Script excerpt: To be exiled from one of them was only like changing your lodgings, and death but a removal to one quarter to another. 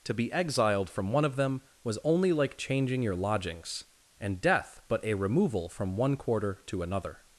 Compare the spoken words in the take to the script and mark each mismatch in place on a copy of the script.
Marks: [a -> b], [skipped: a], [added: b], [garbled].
To be exiled from one of them was only like changing your lodgings, and death but a removal [to -> from] one quarter to another.